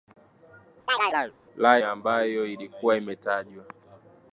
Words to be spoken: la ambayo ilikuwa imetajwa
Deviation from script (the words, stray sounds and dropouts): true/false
true